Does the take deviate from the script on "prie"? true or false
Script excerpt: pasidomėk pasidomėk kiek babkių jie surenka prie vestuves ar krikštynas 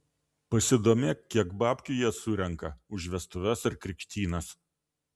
true